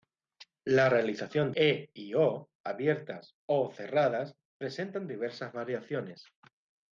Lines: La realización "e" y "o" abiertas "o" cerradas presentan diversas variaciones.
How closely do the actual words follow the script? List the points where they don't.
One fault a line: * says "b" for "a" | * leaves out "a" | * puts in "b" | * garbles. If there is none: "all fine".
all fine